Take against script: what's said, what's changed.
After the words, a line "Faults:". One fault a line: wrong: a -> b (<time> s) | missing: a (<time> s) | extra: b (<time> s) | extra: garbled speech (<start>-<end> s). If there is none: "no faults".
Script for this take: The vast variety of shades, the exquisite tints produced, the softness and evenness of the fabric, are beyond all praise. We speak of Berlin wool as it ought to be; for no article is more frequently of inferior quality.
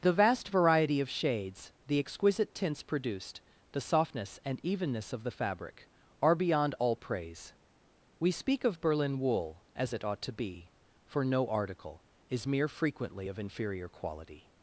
The vast variety of shades, the exquisite tints produced, the softness and evenness of the fabric, are beyond all praise. We speak of Berlin wool as it ought to be; for no article is mere frequently of inferior quality.
Faults:
wrong: more -> mere (12.5 s)